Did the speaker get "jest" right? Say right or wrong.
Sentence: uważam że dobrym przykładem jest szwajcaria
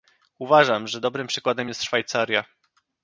right